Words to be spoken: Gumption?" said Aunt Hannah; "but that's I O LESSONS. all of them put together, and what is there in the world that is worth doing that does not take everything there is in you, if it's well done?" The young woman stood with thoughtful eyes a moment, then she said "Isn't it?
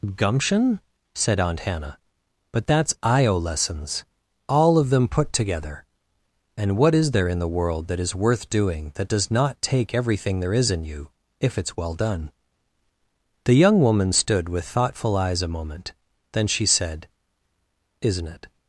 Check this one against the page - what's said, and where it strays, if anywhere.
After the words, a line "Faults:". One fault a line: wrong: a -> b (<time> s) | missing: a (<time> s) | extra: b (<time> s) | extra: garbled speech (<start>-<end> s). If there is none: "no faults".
Gumption?" said Aunt Hannah; "but that's I O LESSONS. all of them put together, and what is there in the world that is worth doing that does not take everything there is in you, if it's well done?" The young woman stood with thoughtful eyes a moment, then she said "Isn't it?
Faults:
no faults